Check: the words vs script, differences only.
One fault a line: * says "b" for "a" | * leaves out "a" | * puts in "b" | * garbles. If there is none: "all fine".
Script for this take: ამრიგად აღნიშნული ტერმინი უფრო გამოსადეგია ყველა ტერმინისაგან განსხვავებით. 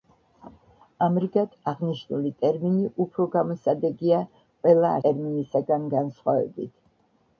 all fine